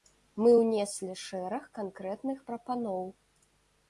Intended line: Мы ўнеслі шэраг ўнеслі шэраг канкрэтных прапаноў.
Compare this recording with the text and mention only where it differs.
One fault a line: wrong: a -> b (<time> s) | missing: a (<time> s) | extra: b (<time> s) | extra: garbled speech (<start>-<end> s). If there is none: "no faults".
missing: ўнеслі шэраг (1.7 s)